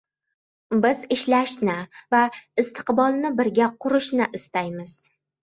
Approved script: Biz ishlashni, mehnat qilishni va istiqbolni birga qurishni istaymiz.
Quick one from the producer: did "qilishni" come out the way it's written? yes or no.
no